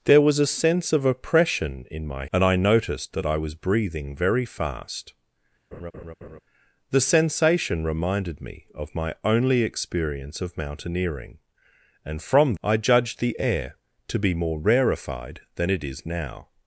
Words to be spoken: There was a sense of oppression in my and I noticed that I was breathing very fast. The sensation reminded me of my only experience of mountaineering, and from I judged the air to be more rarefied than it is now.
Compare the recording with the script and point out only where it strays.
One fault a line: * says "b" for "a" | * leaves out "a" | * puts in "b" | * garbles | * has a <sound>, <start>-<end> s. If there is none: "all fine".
* has a laugh, 5.7-6.4 s